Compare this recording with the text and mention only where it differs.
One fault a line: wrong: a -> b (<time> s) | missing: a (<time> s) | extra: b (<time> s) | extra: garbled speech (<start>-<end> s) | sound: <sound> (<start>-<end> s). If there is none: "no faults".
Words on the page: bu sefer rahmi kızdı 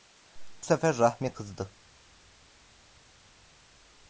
no faults